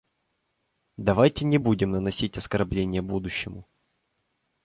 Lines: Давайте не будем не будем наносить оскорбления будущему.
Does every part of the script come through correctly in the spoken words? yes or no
no